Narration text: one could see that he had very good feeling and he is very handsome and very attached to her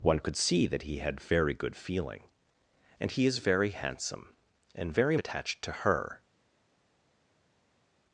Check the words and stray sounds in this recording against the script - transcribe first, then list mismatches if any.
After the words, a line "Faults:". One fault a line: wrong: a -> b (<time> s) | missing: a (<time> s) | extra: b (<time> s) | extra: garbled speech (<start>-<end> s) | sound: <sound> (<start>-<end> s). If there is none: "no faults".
one could see that he had very good feeling and he is very handsome and very attached to her
Faults:
no faults